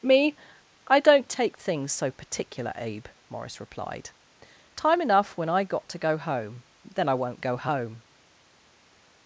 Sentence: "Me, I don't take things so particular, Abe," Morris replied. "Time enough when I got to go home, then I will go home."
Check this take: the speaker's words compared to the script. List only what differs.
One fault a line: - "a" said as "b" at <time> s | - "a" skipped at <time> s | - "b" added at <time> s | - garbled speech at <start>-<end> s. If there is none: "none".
- "will" said as "won't" at 7.1 s